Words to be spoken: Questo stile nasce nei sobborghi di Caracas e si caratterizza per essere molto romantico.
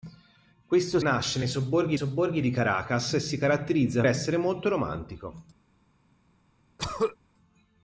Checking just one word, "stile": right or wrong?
wrong